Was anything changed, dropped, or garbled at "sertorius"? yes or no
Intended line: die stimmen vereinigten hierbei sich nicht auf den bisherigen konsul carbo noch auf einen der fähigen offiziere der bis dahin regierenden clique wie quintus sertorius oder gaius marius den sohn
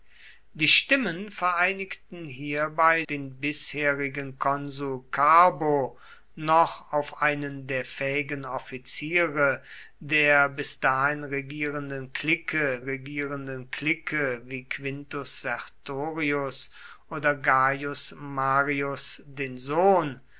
no